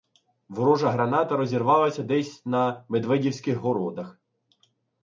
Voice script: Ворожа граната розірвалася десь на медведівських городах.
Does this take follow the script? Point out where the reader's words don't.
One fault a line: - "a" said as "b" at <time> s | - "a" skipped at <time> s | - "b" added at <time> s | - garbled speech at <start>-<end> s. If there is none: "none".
none